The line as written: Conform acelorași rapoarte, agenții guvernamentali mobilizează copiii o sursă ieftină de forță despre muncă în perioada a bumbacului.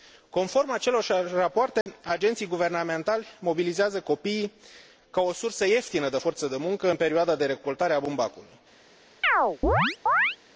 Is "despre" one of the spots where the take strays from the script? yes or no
yes